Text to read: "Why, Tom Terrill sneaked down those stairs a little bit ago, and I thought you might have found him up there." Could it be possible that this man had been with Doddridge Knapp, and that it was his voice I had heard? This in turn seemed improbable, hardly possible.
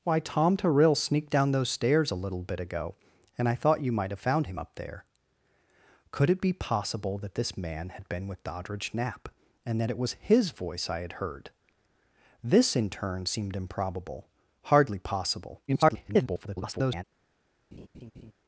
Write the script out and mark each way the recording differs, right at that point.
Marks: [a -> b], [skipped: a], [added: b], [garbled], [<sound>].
"Why, Tom Terrill sneaked down those stairs a little bit ago, and I thought you might have found him up there." Could it be possible that this man had been with Doddridge Knapp, and that it was his voice I had heard? This in turn seemed improbable, hardly possible. [garbled] [laugh]